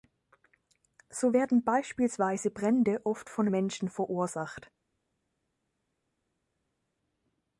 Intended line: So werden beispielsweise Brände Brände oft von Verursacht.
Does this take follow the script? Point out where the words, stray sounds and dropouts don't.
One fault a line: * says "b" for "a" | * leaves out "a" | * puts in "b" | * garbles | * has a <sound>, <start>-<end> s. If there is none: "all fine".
* leaves out "Brände"
* puts in "Menschen"